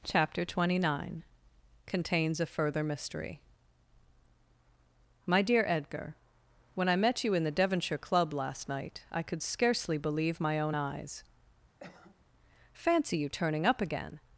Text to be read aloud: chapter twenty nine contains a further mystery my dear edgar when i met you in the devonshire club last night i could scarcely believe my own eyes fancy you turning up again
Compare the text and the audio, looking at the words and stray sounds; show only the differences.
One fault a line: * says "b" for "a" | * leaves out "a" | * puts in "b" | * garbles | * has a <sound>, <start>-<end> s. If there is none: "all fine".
* has a cough, 11.8-12.3 s